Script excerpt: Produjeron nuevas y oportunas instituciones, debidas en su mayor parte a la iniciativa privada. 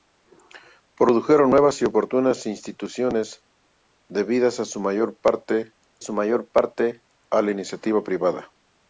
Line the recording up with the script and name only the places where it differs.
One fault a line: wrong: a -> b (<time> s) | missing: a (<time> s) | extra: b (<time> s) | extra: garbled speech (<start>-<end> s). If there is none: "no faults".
extra: su mayor parte (6.0 s)